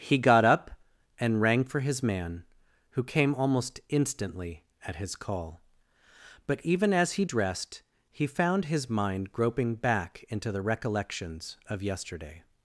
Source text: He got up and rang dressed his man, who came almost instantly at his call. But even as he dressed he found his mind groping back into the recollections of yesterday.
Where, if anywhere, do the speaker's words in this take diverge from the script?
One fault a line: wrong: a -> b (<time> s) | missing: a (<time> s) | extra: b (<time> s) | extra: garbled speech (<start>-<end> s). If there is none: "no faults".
wrong: dressed -> for (1.6 s)